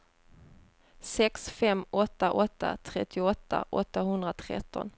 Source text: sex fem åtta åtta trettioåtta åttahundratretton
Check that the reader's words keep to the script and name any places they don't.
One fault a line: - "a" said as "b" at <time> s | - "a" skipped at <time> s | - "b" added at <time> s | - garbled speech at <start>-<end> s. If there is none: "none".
none